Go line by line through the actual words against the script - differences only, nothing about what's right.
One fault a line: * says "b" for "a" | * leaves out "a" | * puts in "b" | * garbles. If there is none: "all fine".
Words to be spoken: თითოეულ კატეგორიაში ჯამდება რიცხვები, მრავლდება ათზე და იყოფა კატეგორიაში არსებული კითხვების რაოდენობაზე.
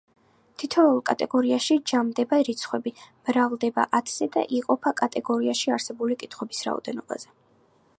all fine